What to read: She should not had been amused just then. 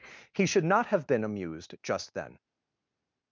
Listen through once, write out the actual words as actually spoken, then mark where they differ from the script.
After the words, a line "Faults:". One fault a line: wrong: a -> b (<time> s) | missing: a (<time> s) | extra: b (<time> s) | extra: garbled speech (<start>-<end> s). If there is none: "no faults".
He should not have been amused just then.
Faults:
wrong: She -> He (0.3 s)
wrong: had -> have (0.9 s)